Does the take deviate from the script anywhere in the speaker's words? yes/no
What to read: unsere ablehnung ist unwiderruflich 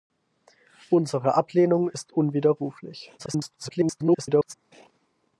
yes